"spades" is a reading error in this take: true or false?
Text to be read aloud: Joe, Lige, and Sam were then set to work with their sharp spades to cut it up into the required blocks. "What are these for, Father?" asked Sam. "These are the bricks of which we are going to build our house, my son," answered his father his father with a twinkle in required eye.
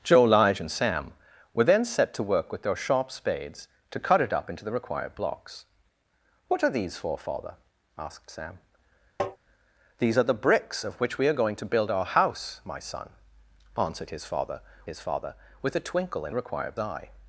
false